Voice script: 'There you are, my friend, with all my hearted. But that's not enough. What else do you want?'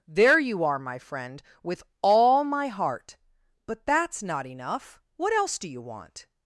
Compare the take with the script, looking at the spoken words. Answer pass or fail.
fail